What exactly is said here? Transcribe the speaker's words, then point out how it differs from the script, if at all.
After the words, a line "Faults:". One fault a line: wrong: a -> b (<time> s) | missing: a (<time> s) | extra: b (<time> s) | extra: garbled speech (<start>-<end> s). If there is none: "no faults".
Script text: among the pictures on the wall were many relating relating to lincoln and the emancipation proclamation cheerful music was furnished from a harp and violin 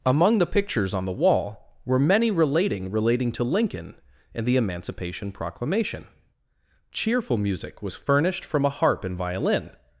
among the pictures on the wall were many relating relating to lincoln and the emancipation proclamation cheerful music was furnished from a harp and violin
Faults:
no faults